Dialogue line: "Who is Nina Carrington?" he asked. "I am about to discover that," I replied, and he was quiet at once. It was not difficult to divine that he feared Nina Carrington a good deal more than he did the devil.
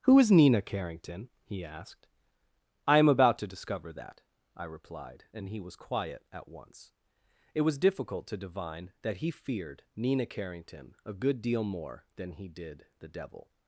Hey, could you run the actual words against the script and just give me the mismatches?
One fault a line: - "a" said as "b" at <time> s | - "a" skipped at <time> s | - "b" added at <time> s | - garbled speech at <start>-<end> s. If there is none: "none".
- "not" skipped at 7.8 s